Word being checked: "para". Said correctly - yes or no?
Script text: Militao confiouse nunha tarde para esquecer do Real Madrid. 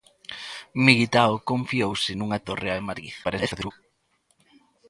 no